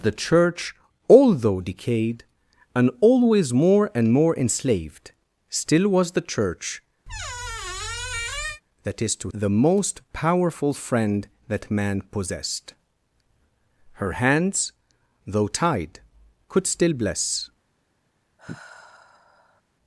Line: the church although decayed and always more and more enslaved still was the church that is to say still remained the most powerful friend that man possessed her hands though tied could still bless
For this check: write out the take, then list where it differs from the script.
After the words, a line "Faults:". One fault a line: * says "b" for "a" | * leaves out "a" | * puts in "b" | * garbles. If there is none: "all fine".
the church although decayed and always more and more enslaved still was the church that is to the most powerful friend that man possessed her hands though tied could still bless
Faults:
* leaves out "say still remained"